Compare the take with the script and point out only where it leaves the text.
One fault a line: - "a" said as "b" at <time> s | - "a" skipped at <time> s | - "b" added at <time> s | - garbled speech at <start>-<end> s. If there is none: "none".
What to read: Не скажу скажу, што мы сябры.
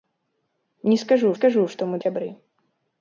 none